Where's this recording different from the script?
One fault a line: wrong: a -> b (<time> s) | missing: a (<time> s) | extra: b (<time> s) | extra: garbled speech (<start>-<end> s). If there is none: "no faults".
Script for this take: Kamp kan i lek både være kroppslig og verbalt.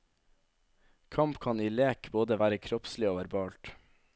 no faults